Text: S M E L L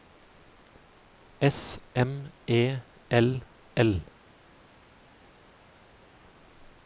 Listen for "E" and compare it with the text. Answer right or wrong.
right